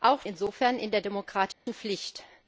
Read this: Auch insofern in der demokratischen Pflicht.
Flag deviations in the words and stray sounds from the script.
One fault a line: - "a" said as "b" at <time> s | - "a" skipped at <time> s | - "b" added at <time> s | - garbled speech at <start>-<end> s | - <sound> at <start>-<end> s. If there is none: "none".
- dropout at 1.5-1.7 s